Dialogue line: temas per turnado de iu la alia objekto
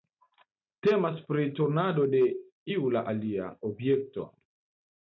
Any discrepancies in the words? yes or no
yes